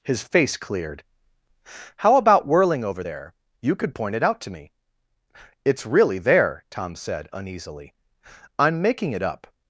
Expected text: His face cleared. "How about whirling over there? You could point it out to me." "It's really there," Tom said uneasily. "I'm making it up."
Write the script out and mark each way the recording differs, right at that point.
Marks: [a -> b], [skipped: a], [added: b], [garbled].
His face cleared. "How about whirling over there? You could point it out to me." "It's really there," Tom said uneasily. "I'm making it up."